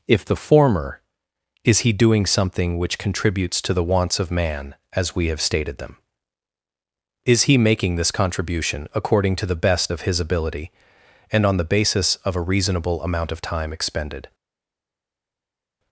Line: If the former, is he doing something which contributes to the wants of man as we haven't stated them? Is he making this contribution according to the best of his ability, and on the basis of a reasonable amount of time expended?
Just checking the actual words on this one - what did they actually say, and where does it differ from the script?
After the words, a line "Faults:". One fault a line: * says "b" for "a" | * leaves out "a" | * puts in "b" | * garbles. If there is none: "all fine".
If the former, is he doing something which contributes to the wants of man as we have stated them? Is he making this contribution according to the best of his ability, and on the basis of a reasonable amount of time expended?
Faults:
* says "have" for "haven't"